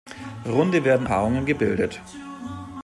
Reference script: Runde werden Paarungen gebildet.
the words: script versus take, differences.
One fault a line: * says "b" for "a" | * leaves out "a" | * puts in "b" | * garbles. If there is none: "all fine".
all fine